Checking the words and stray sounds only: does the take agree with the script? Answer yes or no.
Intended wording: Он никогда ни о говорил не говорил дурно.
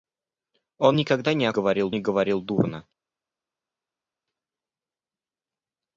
yes